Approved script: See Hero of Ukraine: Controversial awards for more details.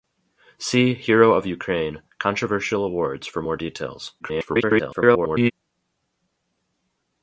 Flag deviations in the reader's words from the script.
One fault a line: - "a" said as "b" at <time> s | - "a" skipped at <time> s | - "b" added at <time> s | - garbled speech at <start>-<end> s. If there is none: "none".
- garbled speech at 4.2-5.5 s